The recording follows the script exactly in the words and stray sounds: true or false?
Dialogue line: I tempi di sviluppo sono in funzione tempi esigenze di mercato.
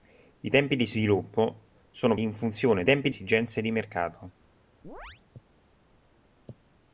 false